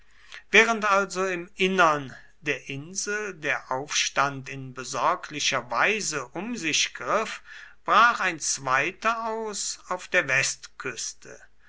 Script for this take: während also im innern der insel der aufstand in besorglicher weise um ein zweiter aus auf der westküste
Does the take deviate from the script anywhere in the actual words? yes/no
yes